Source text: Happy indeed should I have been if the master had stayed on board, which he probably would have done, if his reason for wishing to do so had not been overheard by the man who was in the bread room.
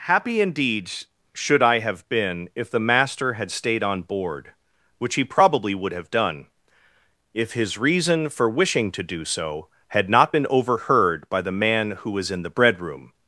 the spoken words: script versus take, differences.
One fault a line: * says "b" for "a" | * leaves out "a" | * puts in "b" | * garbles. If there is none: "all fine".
all fine